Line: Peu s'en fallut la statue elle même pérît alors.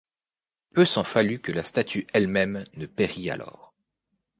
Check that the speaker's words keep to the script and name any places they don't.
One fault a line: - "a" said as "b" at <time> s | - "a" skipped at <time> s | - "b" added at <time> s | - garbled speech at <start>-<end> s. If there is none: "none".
- "que" added at 1.4 s
- "ne" added at 2.7 s